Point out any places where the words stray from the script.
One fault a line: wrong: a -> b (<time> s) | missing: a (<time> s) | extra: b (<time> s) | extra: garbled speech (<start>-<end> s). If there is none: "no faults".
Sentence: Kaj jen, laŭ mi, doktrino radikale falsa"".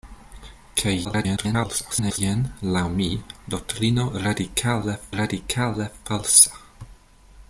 extra: garbled speech (1.0-2.2 s)
extra: radikale (5.2 s)